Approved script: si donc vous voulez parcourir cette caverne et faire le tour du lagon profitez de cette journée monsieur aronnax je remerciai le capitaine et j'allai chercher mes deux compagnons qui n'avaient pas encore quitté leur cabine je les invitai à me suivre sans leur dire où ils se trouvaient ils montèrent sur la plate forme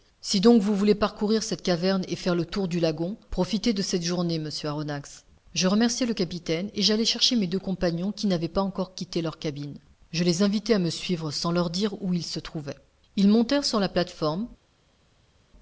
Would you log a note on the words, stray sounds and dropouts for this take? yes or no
no